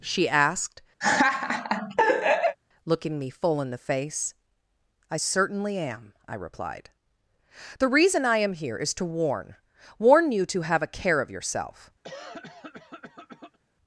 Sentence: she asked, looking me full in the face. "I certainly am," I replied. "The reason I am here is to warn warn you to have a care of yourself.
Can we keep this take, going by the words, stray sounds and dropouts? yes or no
no